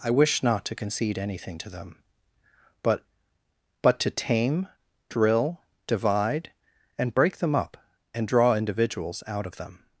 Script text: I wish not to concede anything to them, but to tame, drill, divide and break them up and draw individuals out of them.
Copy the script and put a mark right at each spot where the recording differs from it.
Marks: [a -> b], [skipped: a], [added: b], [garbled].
I wish not to concede anything to them, but [added: but] to tame, drill, divide and break them up and draw individuals out of them.